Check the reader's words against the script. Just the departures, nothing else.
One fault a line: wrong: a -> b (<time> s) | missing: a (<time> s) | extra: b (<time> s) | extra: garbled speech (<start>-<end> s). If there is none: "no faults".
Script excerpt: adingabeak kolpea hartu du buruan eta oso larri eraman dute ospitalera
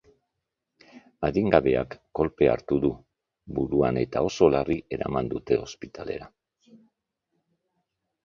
no faults